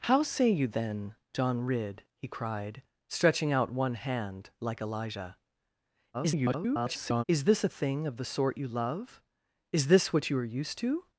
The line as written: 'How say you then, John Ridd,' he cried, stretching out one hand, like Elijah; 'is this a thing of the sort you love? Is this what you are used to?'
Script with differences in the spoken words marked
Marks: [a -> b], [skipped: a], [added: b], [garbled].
'How say you then, John Ridd,' he cried, stretching out one hand, like Elijah; [garbled] 'is this a thing of the sort you love? Is this what you are used to?'